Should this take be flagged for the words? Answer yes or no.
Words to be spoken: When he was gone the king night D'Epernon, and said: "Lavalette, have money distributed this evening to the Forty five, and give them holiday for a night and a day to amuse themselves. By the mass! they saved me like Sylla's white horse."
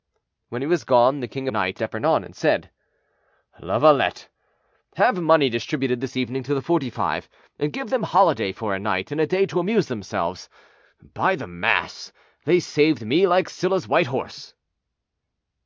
no